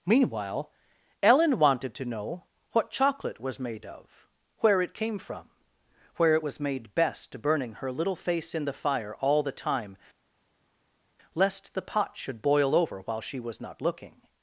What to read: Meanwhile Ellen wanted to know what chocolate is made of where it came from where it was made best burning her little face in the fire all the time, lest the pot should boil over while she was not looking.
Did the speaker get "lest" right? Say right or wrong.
right